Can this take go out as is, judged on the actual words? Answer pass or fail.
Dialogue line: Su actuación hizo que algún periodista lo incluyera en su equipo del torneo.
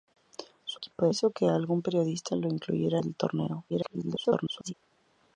fail